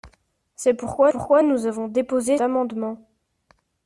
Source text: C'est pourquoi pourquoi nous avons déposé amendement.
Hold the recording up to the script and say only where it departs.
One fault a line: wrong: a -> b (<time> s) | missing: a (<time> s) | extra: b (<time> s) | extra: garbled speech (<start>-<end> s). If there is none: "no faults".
no faults